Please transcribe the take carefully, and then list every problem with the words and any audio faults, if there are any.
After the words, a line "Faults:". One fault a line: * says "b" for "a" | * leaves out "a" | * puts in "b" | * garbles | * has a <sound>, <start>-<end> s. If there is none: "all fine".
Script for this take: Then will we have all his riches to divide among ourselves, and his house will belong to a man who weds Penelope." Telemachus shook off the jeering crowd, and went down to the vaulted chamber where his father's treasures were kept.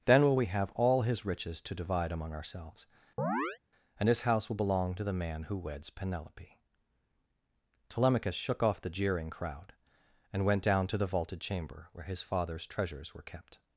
Then will we have all his riches to divide among ourselves, and his house will belong to the man who weds Penelope." Telemachus shook off the jeering crowd, and went down to the vaulted chamber where his father's treasures were kept.
Faults:
* has a chirp, 3.2-3.6 s
* says "the" for "a"